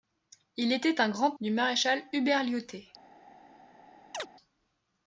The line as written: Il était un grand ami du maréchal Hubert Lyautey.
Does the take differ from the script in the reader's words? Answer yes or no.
yes